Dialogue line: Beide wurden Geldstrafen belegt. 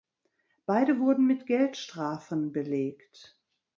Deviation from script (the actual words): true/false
true